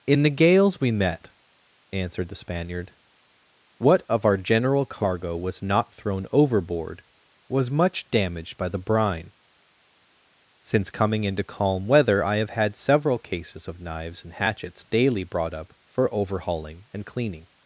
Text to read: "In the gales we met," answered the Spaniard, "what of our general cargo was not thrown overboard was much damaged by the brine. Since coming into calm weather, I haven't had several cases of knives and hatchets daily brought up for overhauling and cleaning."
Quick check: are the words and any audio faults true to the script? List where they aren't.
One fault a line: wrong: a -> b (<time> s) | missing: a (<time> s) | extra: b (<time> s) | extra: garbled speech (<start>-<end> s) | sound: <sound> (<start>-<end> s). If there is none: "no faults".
wrong: haven't -> have (12.4 s)